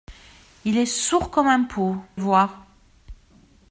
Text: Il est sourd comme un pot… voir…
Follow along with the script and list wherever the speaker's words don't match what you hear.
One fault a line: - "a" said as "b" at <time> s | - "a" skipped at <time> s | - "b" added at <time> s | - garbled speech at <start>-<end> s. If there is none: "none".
none